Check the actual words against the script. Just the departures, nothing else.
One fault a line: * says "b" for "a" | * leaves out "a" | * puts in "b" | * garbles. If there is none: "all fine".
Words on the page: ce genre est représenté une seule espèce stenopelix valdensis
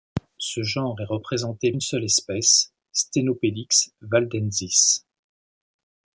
all fine